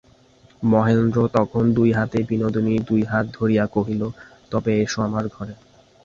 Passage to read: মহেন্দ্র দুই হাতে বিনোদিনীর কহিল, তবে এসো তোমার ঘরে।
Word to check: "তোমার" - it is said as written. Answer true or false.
false